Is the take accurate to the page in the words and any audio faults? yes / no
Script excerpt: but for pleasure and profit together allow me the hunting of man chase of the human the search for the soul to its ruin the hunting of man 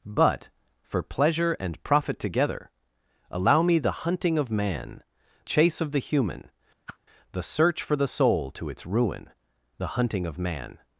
no